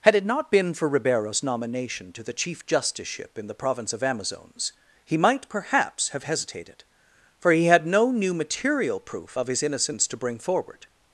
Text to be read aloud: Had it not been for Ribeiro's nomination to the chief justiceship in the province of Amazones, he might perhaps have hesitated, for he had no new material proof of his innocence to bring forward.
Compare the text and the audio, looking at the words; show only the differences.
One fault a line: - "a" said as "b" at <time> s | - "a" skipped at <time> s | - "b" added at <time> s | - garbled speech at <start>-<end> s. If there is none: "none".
none